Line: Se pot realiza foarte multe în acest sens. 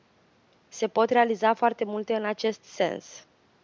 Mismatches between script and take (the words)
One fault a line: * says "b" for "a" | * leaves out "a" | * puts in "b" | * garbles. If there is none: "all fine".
all fine